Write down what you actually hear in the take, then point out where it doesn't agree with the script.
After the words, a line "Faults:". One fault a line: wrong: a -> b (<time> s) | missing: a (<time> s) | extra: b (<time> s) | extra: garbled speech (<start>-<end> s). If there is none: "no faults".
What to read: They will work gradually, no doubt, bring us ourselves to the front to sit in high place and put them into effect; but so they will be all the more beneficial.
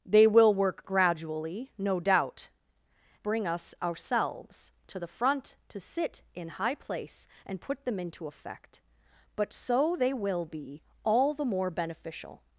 They will work gradually, no doubt, bring us ourselves to the front to sit in high place and put them into effect; but so they will be all the more beneficial.
Faults:
no faults